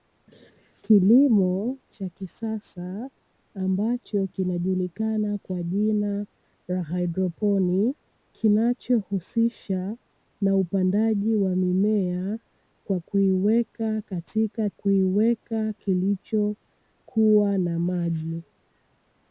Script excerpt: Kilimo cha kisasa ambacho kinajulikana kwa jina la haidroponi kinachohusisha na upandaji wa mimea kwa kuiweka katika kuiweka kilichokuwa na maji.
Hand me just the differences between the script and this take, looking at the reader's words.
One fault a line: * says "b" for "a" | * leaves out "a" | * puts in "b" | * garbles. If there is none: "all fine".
all fine